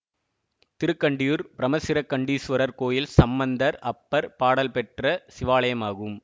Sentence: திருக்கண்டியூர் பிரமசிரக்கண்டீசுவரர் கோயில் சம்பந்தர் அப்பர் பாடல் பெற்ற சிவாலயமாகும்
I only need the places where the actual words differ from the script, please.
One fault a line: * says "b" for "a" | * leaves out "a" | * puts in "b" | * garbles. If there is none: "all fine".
all fine